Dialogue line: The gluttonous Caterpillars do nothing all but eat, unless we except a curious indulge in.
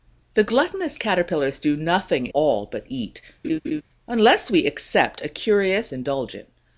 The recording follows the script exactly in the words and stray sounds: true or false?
false